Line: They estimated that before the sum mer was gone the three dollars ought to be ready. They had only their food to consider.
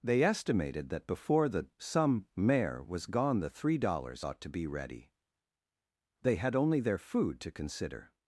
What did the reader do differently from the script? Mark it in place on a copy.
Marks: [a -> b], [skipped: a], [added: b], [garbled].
They estimated that before the [sum mer -> some mare] was gone the three dollars ought to be ready. They had only their food to consider.